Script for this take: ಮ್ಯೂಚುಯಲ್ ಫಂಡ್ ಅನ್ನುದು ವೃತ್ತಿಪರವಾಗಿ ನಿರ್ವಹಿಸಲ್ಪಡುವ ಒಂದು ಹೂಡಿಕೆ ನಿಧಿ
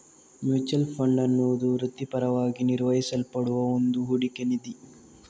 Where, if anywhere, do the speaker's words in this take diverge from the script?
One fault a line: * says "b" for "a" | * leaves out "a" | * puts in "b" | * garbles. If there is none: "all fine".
all fine